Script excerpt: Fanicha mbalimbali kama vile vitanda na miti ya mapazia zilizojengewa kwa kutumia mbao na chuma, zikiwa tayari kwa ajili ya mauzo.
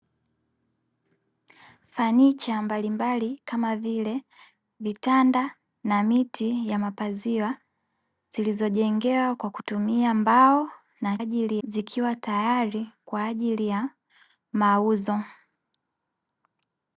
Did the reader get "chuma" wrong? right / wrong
wrong